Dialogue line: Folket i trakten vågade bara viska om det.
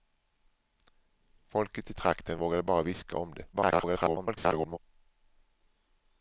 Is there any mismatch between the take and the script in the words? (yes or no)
yes